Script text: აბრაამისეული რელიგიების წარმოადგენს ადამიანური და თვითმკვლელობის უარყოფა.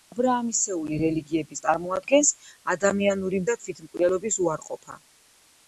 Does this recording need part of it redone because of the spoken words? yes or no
no